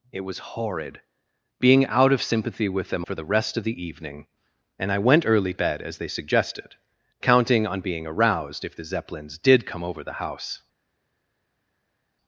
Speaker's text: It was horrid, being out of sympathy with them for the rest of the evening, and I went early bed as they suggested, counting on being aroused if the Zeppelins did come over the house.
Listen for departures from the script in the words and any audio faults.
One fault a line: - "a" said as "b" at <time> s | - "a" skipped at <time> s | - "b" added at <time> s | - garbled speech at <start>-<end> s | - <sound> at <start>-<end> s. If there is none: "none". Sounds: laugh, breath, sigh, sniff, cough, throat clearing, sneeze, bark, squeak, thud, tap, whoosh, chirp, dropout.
none